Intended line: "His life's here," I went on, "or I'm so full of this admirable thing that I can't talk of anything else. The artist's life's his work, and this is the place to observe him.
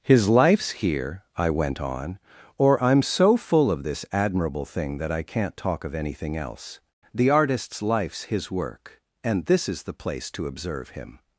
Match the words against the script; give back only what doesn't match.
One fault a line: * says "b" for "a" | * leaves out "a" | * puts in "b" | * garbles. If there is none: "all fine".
all fine